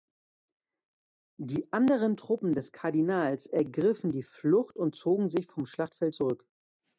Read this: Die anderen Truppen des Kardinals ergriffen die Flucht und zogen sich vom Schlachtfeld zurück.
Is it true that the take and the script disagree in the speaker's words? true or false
false